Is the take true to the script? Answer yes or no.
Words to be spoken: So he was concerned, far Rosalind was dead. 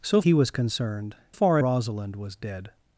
yes